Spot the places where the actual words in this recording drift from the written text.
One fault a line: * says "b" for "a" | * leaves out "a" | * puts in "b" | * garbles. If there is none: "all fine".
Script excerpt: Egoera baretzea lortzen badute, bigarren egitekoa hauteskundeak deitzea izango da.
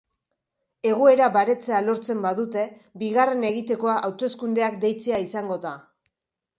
all fine